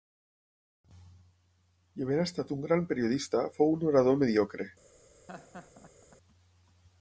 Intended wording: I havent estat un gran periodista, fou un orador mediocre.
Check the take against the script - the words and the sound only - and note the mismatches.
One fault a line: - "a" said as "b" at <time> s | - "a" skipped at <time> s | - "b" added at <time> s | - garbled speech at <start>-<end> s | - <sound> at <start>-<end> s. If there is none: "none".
- laugh at 5.3-6.2 s